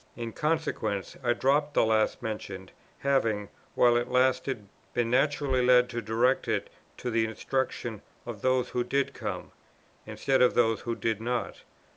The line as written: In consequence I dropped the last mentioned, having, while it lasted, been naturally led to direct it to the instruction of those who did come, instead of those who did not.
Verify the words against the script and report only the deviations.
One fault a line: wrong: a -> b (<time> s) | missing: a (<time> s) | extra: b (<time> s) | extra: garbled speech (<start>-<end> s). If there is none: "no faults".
no faults